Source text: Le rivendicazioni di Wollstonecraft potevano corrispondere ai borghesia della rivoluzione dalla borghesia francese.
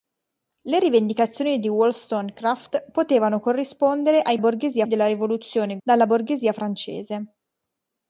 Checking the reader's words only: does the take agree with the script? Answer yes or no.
yes